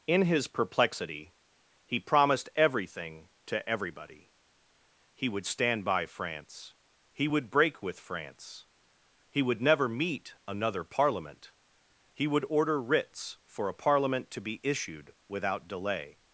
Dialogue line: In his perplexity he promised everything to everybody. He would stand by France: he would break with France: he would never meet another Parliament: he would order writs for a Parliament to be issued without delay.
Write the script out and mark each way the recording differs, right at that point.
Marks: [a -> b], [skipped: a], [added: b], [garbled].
In his perplexity he promised everything to everybody. He would stand by France: he would break with France: he would never meet another Parliament: he would order writs for a Parliament to be issued without delay.